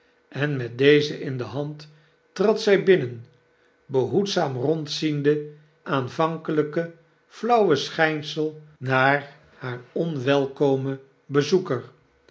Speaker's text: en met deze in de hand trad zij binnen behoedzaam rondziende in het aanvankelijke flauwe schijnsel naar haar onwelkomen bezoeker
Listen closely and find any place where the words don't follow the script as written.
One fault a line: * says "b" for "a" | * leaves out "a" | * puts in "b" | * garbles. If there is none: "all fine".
* leaves out "in het"